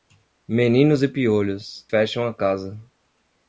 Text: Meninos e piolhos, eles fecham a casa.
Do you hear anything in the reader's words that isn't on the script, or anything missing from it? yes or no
yes